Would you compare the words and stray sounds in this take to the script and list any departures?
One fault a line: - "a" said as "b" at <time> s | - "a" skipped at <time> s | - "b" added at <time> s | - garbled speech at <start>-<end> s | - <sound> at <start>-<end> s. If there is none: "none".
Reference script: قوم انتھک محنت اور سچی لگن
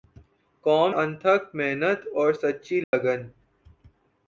- dropout at 2.8-2.9 s